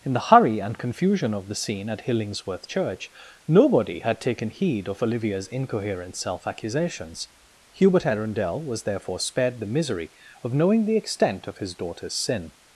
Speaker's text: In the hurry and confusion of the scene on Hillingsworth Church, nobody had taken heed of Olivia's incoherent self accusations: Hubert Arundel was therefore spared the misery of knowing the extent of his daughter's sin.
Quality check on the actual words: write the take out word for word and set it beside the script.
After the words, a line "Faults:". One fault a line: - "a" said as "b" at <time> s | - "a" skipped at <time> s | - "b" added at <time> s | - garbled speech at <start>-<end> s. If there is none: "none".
In the hurry and confusion of the scene at Hillingsworth Church, nobody had taken heed of Olivia's incoherent self accusations: Hubert Arundel was therefore spared the misery of knowing the extent of his daughter's sin.
Faults:
- "on" said as "at" at 1.9 s